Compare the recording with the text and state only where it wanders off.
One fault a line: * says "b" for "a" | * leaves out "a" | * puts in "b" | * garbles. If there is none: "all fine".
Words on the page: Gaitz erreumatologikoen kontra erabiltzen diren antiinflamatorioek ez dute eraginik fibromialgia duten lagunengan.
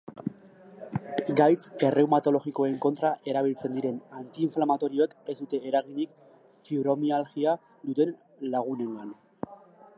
all fine